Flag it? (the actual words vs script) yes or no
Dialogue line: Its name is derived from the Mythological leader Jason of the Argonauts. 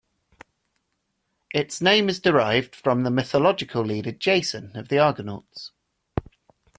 no